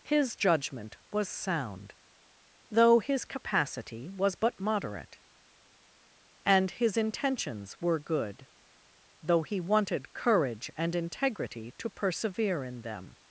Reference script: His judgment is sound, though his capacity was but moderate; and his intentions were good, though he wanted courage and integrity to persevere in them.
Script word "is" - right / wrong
wrong